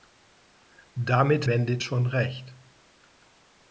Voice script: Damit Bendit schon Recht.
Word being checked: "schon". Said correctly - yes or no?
yes